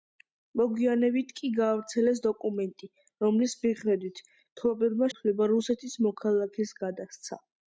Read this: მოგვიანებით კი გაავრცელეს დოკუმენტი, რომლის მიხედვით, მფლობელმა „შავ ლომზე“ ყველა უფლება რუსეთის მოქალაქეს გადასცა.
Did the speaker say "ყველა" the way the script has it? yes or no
no